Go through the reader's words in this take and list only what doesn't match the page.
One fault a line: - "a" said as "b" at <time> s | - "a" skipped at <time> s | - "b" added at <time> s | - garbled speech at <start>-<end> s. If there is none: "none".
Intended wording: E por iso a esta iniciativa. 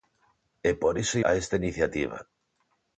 none